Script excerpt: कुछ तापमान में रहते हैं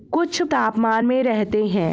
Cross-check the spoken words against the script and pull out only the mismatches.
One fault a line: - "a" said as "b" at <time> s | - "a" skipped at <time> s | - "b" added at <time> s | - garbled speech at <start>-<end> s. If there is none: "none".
none